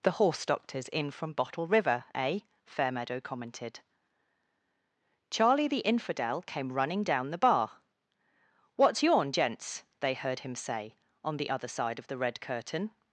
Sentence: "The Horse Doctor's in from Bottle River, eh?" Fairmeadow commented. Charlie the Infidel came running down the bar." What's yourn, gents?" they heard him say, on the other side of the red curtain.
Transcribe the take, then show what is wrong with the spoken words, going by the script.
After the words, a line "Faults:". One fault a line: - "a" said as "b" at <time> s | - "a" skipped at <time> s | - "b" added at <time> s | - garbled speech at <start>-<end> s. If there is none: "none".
"The Horse Doctor's in from Bottle River, eh?" Fairmeadow commented. Charlie the Infidel came running down the bar." What's yourn, gents?" they heard him say, on the other side of the red curtain.
Faults:
none